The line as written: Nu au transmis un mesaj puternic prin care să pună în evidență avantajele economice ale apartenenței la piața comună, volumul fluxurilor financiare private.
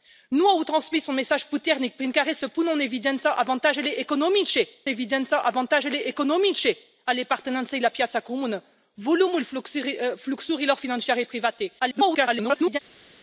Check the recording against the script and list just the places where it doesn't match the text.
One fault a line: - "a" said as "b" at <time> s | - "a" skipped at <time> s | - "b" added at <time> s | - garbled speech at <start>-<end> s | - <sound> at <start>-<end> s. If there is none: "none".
- "evidență avantajele economice" added at 4.9 s
- garbled speech at 11.8-12.8 s